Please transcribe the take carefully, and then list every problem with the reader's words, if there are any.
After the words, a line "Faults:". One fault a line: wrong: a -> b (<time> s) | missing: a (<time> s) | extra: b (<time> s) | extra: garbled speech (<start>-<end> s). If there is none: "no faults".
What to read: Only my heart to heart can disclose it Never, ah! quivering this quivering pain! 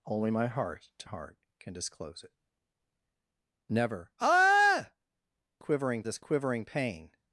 Only my heart to heart can disclose it Never, ah! quivering this quivering pain!
Faults:
no faults